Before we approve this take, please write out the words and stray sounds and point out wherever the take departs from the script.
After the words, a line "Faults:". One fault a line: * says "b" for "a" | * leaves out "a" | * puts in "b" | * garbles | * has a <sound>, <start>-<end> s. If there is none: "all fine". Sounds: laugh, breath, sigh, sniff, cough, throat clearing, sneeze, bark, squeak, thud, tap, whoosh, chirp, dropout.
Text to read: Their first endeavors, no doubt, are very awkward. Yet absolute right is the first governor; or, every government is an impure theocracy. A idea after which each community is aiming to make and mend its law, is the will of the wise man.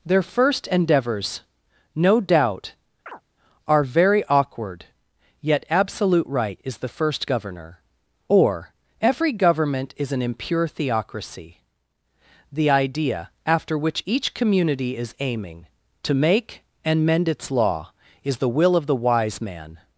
Their first endeavors, no doubt, are very awkward. Yet absolute right is the first governor; or, every government is an impure theocracy. The idea after which each community is aiming to make and mend its law, is the will of the wise man.
Faults:
* has a chirp, 3.1-3.2 s
* says "The" for "A"